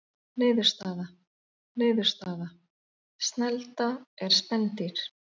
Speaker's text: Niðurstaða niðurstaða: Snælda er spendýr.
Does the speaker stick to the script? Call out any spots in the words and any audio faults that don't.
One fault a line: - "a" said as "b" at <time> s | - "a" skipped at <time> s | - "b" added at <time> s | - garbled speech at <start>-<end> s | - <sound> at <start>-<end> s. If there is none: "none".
none